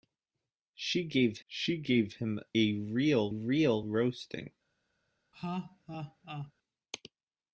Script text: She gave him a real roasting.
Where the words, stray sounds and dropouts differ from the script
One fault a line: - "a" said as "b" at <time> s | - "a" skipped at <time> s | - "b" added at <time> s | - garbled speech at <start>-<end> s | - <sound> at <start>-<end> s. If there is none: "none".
- "she gave" added at 1.5 s
- "real" added at 3.3 s
- laugh at 5.3-6.5 s